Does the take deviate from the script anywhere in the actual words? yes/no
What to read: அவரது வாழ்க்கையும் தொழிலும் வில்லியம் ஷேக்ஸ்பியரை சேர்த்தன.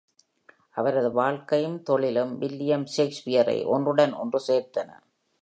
yes